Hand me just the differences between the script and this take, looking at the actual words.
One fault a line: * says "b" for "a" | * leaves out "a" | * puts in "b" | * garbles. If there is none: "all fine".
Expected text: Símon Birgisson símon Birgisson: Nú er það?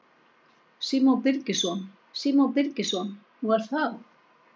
all fine